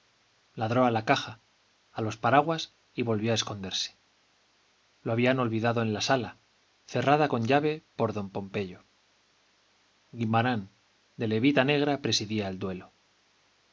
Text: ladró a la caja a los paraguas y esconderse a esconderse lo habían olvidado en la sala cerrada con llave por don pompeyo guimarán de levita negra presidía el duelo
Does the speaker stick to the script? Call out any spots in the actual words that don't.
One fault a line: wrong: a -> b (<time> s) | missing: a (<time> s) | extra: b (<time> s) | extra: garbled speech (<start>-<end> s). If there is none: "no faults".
wrong: esconderse -> volvió (3.0 s)